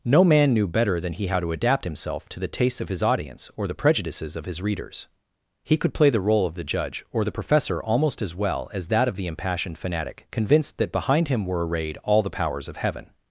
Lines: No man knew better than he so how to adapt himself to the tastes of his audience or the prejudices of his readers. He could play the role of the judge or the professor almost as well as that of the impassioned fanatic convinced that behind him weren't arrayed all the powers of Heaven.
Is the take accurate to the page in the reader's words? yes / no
no